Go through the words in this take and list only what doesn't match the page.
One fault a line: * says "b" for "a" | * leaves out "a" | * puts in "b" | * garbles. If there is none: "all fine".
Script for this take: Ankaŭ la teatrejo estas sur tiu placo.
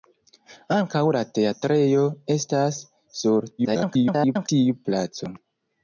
* garbles